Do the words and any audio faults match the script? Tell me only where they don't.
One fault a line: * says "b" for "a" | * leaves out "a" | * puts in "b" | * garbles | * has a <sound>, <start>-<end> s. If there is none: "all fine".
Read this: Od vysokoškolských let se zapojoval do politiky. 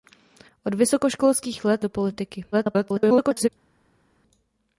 * leaves out "se zapojoval"
* garbles